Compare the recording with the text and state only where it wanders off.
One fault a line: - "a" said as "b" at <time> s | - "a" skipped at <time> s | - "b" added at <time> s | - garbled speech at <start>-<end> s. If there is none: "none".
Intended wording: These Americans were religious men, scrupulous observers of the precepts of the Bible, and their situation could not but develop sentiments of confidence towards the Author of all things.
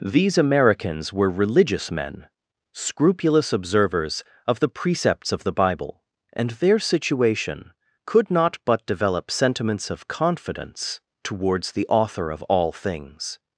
none